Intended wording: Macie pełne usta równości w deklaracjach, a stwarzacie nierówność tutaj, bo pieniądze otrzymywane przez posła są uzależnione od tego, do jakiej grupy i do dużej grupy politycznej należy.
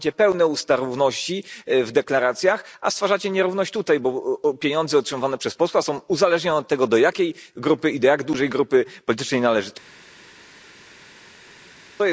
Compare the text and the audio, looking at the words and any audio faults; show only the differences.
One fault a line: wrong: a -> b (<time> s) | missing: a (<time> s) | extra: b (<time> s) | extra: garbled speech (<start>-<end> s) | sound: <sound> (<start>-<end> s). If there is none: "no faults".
extra: jak (8.1 s)